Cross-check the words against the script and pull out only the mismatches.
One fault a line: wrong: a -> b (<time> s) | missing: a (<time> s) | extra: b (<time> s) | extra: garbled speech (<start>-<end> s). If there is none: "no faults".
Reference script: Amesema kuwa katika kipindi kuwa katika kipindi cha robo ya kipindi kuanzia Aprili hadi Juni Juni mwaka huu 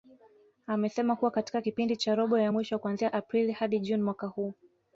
missing: kuwa katika kipindi (2.0 s)
wrong: kipindi -> mwisho (2.5 s)
missing: Juni (4.0 s)